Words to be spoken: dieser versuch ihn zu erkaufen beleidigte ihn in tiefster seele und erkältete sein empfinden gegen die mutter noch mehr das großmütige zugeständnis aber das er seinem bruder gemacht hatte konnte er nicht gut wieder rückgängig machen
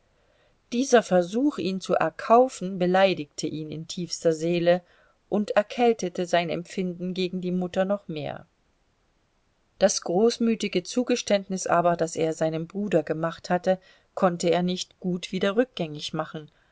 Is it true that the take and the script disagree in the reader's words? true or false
false